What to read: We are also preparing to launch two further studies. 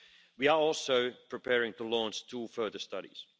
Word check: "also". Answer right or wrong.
right